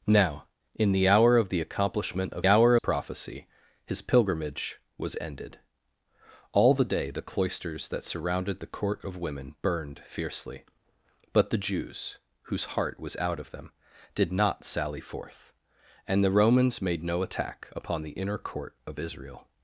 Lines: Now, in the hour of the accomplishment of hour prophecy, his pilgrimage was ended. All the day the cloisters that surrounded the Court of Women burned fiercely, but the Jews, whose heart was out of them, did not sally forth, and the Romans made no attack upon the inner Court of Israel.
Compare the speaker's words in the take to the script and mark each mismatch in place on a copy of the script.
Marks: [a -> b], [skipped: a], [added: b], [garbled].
Now, in the hour of the accomplishment of hour prophecy, his pilgrimage was ended. All the day the cloisters that surrounded the Court of Women burned fiercely, but the Jews, whose heart was out of them, did not sally forth, and the Romans made no attack upon the inner Court of Israel.